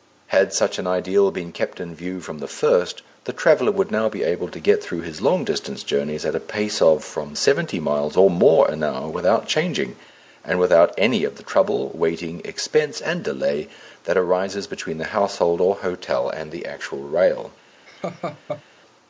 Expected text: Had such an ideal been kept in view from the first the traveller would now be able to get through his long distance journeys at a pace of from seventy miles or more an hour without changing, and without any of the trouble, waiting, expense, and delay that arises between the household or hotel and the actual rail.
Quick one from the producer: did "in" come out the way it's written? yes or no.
yes